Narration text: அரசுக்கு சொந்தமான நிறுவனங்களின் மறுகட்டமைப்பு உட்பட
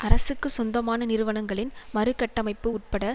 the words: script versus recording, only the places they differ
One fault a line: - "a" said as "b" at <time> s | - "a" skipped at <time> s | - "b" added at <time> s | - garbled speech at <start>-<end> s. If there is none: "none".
none